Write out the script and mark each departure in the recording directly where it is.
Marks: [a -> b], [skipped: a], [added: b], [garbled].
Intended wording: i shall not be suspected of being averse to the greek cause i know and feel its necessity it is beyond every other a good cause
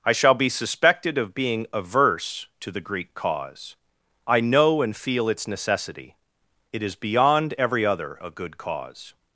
i shall [skipped: not] be suspected of being averse to the greek cause i know and feel its necessity it is beyond every other a good cause